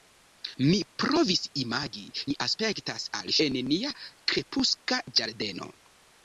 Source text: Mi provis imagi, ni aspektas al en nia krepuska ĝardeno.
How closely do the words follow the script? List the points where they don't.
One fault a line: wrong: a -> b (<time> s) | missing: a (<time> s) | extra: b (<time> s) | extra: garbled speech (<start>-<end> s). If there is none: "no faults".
no faults